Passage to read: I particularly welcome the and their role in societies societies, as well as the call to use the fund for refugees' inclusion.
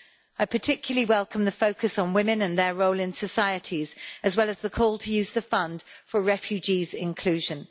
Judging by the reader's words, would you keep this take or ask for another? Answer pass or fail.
fail